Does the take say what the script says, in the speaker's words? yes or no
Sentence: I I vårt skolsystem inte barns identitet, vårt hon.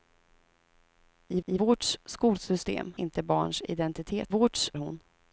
yes